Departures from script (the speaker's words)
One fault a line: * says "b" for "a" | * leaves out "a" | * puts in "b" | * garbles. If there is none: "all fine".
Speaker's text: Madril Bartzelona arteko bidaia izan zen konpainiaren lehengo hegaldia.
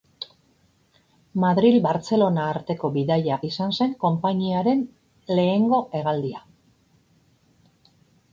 all fine